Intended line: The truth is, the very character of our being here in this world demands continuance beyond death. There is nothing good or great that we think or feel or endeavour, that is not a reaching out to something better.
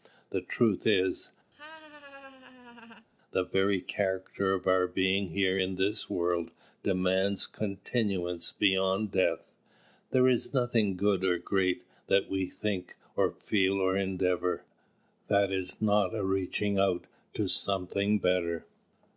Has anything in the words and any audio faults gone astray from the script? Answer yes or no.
yes